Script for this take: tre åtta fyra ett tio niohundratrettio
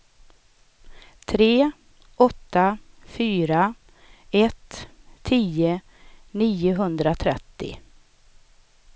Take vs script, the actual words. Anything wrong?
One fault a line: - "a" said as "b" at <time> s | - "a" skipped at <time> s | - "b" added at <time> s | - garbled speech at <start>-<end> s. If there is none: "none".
none